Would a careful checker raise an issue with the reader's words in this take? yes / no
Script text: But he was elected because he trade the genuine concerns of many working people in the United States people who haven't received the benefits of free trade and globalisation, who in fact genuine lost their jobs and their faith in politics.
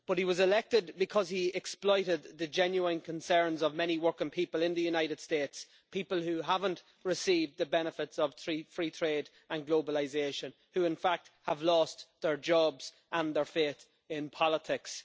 yes